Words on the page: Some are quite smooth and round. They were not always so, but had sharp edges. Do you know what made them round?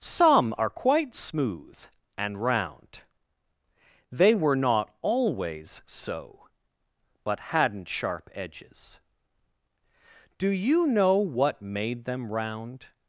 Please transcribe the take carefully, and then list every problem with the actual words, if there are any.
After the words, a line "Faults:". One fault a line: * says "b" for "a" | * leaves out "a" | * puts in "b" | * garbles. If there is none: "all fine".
Some are quite smooth and round. They were not always so, but hadn't sharp edges. Do you know what made them round?
Faults:
* says "hadn't" for "had"